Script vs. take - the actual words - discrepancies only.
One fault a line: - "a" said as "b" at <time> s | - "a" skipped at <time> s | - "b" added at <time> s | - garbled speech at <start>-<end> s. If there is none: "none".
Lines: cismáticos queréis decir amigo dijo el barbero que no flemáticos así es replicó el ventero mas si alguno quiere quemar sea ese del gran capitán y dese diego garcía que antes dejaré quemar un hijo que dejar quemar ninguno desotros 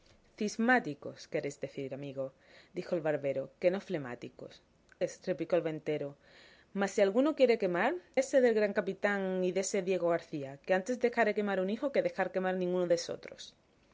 - "así" skipped at 4.5 s
- "sea" skipped at 7.9 s